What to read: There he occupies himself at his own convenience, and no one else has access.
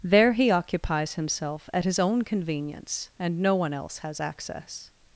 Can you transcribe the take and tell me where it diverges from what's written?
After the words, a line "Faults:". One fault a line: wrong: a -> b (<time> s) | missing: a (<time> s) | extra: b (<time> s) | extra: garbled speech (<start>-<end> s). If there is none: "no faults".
There he occupies himself at his own convenience, and no one else has access.
Faults:
no faults